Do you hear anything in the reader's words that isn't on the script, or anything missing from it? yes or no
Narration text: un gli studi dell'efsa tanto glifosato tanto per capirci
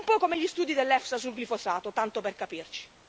yes